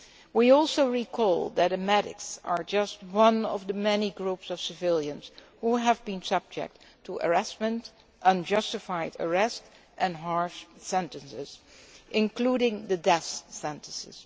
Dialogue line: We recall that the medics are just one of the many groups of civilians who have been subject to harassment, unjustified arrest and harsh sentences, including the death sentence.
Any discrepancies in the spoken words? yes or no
yes